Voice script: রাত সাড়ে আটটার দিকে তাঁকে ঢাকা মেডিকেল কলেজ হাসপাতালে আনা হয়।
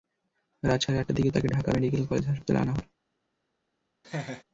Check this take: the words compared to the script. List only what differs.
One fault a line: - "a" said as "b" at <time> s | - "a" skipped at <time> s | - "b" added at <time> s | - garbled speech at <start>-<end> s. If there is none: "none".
none